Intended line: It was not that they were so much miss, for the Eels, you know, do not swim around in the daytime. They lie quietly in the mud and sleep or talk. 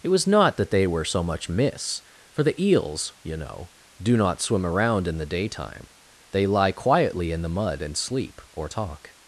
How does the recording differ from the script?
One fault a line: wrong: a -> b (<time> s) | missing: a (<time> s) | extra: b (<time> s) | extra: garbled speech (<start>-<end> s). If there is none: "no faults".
no faults